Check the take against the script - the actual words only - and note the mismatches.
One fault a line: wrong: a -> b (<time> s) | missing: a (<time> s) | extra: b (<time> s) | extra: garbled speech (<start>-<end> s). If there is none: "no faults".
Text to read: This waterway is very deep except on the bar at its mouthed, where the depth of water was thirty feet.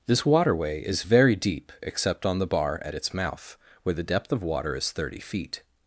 wrong: mouthed -> mouth (3.1 s)
wrong: was -> is (4.8 s)